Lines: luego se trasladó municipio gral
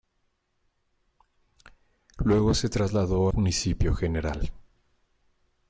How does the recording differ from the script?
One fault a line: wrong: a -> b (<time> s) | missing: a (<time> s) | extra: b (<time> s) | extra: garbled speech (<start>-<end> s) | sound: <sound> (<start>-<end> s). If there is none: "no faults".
no faults